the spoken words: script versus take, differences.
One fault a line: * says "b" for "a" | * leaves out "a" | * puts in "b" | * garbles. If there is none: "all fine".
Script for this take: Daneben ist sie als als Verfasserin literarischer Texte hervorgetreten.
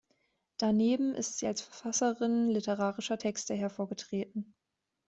* leaves out "als"